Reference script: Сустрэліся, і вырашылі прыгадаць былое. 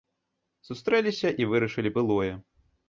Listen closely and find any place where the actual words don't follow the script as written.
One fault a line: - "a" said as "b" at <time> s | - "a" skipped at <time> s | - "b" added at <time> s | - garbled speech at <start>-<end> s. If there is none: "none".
- "прыгадаць" skipped at 1.9 s